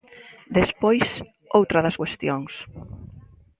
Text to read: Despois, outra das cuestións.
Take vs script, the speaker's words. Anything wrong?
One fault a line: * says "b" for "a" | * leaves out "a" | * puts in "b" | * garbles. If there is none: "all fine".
all fine